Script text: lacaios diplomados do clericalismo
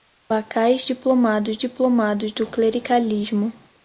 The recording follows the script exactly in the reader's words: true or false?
false